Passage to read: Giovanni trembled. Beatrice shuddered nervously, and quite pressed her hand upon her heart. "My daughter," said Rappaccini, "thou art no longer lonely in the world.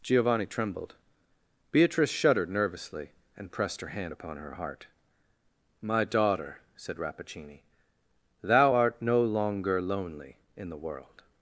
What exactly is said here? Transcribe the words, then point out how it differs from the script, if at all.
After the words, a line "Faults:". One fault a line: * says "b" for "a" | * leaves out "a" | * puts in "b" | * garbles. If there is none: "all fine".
Giovanni trembled. Beatrice shuddered nervously, and pressed her hand upon her heart. "My daughter," said Rappaccini, "thou art no longer lonely in the world.
Faults:
* leaves out "quite"